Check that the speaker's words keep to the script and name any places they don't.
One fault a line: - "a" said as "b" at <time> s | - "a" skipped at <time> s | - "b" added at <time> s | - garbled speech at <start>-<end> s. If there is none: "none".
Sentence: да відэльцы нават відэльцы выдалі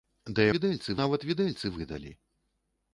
none